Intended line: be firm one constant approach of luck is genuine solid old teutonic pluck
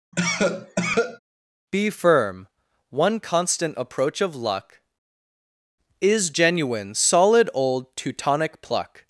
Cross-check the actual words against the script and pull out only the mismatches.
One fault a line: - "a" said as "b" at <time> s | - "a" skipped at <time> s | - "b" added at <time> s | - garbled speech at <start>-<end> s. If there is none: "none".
none